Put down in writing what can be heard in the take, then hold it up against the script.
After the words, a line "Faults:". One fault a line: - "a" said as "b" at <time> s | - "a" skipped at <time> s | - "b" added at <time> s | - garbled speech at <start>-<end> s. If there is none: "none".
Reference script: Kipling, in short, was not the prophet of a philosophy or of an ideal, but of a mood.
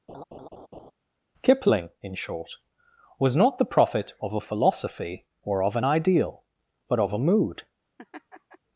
Kipling, in short, was not the prophet of a philosophy or of an ideal, but of a mood.
Faults:
none